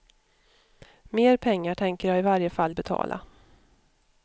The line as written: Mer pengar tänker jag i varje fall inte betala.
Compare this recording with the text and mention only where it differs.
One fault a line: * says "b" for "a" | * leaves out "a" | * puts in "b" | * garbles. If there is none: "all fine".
* leaves out "inte"